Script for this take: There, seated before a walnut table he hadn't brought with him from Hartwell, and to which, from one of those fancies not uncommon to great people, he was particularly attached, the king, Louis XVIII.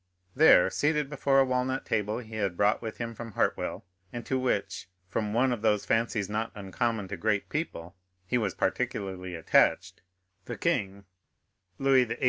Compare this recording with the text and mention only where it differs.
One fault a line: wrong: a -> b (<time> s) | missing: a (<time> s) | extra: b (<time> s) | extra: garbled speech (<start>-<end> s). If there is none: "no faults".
wrong: hadn't -> had (2.4 s)